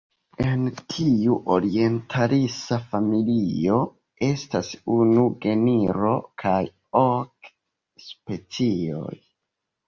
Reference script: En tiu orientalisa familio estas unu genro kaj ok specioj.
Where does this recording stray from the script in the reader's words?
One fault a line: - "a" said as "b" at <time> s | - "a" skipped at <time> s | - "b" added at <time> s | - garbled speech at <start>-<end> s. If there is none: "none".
none